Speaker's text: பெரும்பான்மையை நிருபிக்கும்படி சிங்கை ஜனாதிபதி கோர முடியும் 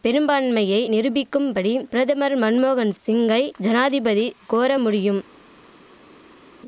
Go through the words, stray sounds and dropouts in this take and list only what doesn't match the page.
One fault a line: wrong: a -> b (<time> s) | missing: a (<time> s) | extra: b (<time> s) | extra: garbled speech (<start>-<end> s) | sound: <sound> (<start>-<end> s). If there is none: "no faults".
extra: பிரதமர் மன்மோகன் (1.9 s)